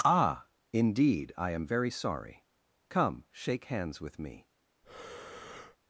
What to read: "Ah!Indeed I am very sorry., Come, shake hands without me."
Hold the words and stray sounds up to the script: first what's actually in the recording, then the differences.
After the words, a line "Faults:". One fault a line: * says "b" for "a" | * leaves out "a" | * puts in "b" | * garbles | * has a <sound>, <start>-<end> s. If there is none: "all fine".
"Ah!Indeed I am very sorry., Come, shake hands with me."
Faults:
* says "with" for "without"
* has a breath, 4.8-5.8 s